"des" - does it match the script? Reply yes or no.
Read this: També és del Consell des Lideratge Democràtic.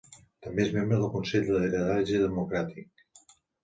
no